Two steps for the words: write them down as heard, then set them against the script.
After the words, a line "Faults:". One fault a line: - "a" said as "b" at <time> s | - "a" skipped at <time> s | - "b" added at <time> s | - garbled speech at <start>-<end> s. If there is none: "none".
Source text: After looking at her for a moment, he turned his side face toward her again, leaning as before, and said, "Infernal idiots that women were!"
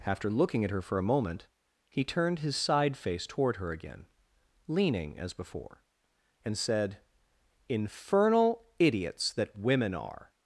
After looking at her for a moment, he turned his side face toward her again, leaning as before, and said, "Infernal idiots that women are!"
Faults:
- "were" said as "are" at 9.9 s